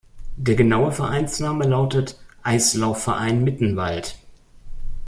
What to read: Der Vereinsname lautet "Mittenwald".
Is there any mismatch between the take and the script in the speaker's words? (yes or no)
yes